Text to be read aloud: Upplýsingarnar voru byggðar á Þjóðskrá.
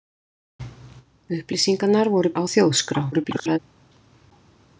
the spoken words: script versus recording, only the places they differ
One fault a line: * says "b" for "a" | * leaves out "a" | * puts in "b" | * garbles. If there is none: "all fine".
* leaves out "byggðar"
* garbles